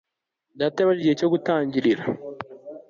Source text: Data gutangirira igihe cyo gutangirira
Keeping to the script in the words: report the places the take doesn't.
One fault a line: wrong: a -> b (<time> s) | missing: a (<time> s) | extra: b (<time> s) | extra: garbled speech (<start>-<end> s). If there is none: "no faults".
wrong: gutangirira -> yabajije (0.8 s)